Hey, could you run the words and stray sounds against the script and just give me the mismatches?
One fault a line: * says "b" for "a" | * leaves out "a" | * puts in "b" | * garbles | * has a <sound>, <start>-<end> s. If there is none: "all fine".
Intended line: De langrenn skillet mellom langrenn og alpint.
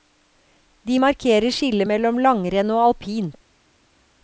* says "markerer" for "langrenn"